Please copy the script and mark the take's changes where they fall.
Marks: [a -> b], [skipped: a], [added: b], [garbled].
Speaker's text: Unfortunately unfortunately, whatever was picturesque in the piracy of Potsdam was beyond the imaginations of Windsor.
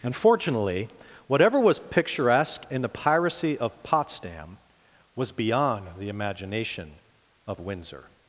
Unfortunately [skipped: unfortunately,] whatever was picturesque in the piracy of Potsdam was beyond the [imaginations -> imagination] of Windsor.